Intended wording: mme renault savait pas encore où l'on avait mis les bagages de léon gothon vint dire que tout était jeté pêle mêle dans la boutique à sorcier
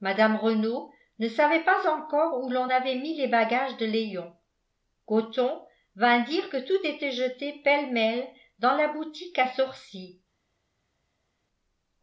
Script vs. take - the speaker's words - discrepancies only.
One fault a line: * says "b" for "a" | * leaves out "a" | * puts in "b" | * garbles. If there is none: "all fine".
* puts in "ne"